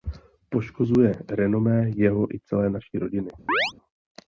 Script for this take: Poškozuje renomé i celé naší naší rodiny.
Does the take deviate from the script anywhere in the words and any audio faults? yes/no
yes